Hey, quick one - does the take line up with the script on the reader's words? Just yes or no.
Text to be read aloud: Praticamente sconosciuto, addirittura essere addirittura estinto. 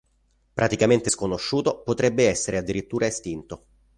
no